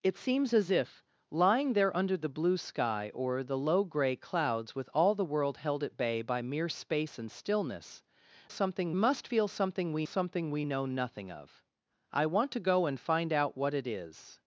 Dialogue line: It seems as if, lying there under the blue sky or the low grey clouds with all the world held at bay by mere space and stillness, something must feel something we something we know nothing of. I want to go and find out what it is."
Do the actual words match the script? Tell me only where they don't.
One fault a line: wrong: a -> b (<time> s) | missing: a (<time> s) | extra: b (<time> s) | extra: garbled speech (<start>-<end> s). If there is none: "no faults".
no faults